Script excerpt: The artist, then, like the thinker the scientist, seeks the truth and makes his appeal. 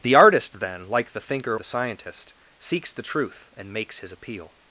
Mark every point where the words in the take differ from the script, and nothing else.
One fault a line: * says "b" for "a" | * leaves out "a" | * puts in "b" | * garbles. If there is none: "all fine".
all fine